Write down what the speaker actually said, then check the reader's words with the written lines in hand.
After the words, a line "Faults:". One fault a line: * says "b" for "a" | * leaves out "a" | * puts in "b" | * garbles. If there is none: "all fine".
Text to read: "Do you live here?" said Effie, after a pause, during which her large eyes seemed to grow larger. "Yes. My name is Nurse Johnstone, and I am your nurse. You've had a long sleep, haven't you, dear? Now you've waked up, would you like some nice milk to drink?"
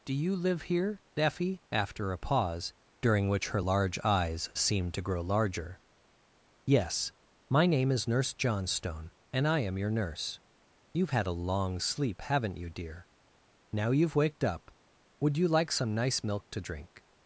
"Do you live here?" Effie, after a pause, during which her large eyes seemed to grow larger. "Yes. My name is Nurse Johnstone, and I am your nurse. You've had a long sleep, haven't you, dear? Now you've waked up, would you like some nice milk to drink?"
Faults:
* leaves out "said"